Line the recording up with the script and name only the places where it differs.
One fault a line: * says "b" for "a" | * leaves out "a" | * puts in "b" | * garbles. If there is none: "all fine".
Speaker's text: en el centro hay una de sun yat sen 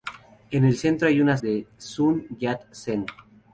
all fine